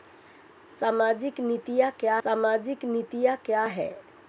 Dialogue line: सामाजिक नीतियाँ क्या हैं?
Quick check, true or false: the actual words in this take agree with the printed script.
false